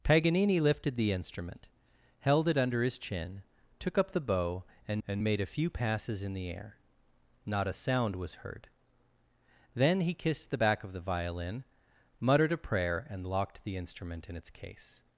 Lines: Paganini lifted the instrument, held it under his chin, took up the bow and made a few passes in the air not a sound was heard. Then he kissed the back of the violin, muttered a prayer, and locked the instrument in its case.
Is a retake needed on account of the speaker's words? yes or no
yes